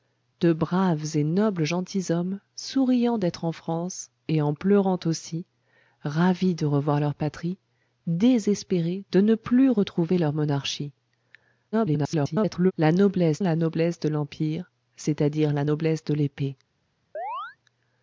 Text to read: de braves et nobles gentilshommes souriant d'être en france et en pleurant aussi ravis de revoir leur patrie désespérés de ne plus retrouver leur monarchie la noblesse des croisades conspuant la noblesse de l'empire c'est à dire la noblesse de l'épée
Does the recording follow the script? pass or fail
fail